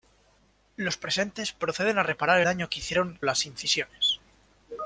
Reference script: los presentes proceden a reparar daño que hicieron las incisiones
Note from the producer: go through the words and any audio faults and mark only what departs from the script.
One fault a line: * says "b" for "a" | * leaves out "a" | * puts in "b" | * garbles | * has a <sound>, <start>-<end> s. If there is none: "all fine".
all fine